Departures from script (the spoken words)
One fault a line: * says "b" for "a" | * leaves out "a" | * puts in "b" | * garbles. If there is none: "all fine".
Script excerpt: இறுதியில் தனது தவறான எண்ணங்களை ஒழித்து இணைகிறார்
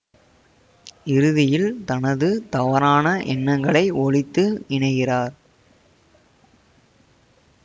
all fine